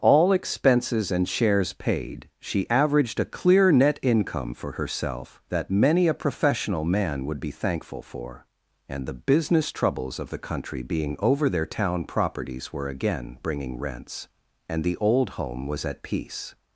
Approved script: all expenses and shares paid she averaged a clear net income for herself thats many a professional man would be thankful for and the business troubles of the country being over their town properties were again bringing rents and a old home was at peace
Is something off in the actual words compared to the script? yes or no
yes